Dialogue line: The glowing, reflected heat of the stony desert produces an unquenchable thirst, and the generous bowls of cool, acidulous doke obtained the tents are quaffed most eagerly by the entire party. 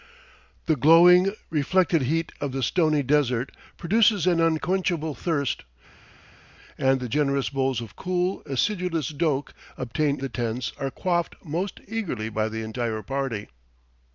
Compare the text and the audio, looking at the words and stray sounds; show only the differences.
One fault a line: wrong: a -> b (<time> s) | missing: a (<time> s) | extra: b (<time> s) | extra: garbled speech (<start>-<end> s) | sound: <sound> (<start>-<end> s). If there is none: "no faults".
no faults